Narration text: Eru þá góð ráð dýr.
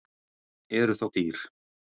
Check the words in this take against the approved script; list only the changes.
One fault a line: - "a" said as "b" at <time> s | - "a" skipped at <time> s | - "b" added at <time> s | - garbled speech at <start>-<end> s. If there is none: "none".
- "góð ráð" skipped at 1.1 s